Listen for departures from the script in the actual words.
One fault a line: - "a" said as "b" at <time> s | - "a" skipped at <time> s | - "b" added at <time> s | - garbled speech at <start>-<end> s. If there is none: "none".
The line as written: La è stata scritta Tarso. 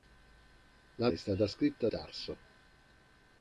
none